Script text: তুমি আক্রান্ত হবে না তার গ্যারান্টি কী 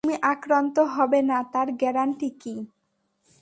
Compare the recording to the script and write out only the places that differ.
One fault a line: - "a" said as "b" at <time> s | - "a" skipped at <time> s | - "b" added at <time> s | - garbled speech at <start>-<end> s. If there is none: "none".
none